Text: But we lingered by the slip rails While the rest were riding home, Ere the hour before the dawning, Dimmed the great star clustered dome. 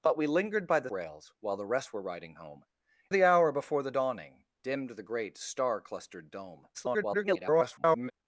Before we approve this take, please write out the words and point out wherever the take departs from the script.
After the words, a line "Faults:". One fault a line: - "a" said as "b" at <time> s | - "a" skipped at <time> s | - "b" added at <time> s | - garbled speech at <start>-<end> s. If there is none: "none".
But we lingered by the rails While the rest were riding home, The hour before the dawning, Dimmed the great star clustered dome. [garbled]
Faults:
- "slip" skipped at 0.9 s
- "Ere" skipped at 2.7 s
- garbled speech at 6.7-8.1 s